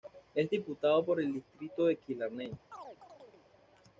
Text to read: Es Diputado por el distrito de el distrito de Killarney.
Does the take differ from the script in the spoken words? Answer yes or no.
yes